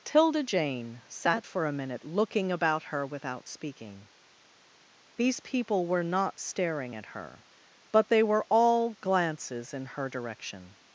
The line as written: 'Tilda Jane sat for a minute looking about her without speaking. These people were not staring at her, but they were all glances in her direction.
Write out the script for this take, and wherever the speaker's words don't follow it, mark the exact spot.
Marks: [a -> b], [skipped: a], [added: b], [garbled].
'Tilda Jane sat for a minute looking about her without speaking. These people were not staring at her, but they were all glances in her direction.